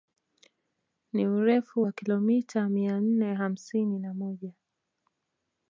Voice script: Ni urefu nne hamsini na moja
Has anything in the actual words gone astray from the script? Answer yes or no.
yes